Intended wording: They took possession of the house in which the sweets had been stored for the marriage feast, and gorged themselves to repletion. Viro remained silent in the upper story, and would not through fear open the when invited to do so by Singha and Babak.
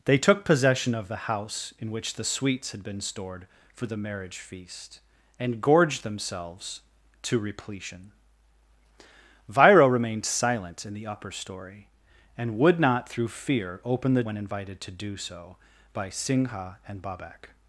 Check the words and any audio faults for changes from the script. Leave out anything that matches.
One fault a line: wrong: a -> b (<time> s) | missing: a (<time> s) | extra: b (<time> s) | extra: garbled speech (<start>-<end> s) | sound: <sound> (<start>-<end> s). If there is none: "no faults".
no faults